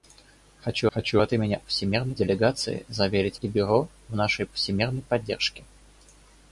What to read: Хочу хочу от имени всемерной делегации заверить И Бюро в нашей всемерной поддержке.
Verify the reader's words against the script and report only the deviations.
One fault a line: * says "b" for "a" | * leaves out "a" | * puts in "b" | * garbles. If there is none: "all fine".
all fine